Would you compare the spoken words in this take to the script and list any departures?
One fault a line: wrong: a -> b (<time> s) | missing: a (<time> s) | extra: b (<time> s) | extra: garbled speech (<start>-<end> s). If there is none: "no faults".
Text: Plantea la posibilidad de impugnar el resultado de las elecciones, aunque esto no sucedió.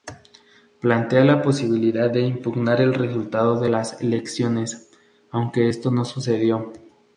no faults